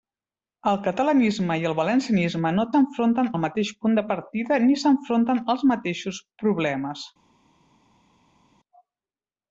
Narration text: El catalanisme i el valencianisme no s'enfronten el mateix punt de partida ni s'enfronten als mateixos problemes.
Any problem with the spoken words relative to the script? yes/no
no